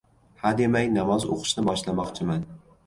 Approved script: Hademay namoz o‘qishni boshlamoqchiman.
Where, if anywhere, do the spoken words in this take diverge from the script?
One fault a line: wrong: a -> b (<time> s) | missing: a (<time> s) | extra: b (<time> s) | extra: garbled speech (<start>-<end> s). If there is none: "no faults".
no faults